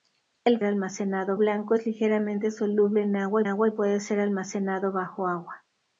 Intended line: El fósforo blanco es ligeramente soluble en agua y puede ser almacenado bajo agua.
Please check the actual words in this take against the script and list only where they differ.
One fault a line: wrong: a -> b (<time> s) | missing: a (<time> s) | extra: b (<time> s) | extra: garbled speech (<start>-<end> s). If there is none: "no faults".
wrong: fósforo -> almacenado (0.6 s)
extra: agua (3.4 s)